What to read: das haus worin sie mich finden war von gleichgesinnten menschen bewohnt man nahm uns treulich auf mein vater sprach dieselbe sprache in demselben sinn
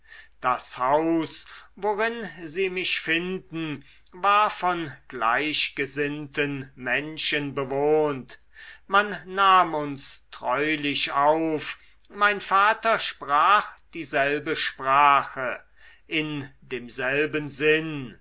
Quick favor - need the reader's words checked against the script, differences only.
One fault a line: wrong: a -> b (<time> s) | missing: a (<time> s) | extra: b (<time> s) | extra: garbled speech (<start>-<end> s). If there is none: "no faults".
no faults